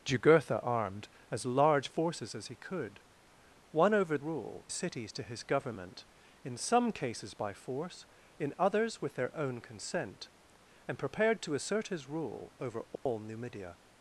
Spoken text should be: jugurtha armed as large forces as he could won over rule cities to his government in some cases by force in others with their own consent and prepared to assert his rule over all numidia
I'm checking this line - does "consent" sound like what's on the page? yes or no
yes